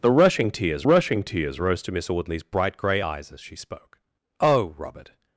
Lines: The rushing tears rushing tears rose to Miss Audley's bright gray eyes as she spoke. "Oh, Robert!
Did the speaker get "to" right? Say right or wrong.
right